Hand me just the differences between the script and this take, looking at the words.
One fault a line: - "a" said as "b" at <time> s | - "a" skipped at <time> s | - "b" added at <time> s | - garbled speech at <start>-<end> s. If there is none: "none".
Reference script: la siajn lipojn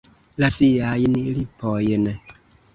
none